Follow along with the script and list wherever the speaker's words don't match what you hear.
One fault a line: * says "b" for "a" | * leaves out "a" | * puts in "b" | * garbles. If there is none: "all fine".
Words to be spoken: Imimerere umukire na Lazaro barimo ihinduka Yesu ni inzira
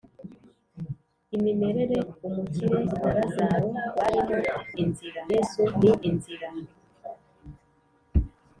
* says "inzira" for "ihinduka"